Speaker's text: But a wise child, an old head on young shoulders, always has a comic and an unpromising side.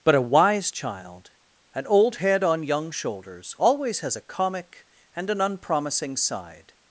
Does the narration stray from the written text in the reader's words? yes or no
no